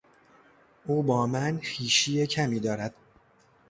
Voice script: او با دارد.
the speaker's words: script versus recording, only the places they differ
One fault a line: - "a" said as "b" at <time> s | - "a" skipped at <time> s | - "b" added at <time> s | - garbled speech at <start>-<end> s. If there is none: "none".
- "من خویشی کمی" added at 1.3 s